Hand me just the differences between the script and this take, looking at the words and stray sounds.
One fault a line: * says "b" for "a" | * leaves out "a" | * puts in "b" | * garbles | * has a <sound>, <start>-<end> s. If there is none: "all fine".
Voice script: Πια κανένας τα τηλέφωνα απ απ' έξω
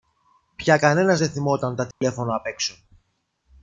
* puts in "δε θυμόταν"
* has a dropout, 1.9-2.0 s
* leaves out "απ"